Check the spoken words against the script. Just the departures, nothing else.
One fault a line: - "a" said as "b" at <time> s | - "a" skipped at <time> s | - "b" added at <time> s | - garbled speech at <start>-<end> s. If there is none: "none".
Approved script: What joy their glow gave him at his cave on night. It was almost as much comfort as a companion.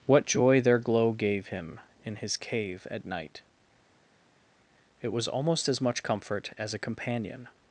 - "at" said as "in" at 2.1 s
- "on" said as "at" at 2.9 s